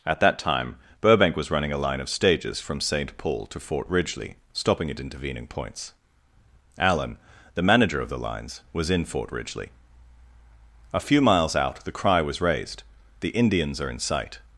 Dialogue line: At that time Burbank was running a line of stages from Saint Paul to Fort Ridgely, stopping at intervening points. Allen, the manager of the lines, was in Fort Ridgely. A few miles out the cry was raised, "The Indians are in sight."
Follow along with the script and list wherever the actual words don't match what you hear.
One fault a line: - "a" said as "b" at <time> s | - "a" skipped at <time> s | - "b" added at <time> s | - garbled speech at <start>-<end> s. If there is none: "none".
none